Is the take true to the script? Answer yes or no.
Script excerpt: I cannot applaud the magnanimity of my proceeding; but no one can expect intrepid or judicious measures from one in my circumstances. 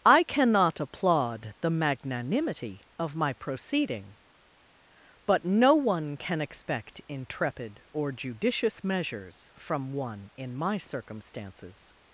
yes